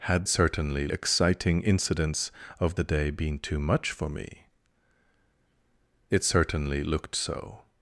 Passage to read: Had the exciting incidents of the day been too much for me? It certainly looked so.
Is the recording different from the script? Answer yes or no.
yes